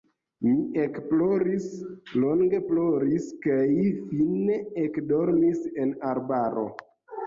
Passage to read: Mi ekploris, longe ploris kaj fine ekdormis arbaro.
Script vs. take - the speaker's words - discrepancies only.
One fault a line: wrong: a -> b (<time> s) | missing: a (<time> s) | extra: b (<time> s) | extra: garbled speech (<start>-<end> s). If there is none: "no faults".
extra: en (5.9 s)